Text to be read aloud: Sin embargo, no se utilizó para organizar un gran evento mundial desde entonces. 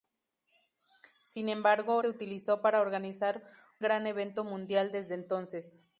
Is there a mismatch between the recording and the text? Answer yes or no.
yes